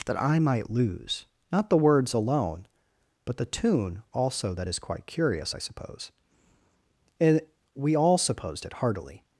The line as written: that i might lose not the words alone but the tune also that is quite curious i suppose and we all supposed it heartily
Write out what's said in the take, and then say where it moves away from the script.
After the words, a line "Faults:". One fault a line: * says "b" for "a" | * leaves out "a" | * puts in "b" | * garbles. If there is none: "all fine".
that i might lose not the words alone but the tune also that is quite curious i suppose and we all supposed it heartily
Faults:
all fine